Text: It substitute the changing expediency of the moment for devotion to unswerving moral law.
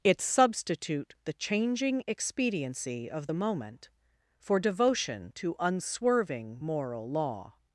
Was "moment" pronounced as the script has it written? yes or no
yes